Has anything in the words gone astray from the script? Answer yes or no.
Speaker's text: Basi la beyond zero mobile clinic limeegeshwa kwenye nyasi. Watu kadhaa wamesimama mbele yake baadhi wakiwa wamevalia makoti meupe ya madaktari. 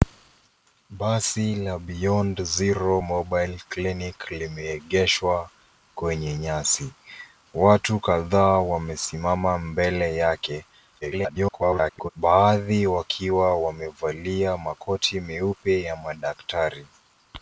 yes